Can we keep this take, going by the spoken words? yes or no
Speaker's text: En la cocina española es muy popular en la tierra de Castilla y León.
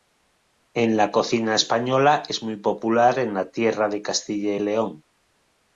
yes